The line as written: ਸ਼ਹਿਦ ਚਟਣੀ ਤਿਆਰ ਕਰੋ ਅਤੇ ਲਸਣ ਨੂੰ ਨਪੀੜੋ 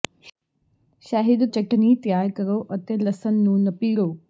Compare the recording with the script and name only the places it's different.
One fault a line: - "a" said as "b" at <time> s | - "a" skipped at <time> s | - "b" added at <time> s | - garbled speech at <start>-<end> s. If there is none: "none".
none